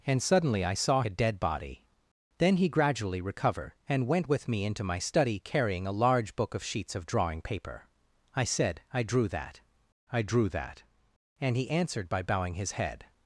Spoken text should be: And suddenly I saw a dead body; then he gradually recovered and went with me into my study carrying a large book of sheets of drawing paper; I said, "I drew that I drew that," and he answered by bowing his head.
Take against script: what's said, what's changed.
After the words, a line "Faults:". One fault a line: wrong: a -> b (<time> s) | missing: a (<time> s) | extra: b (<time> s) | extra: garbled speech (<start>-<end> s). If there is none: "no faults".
And suddenly I saw a dead body; then he gradually recovered and went with me into my study carrying a large book of sheets of drawing paper; I said, "I drew that I drew that," and he answered by bowing his head.
Faults:
no faults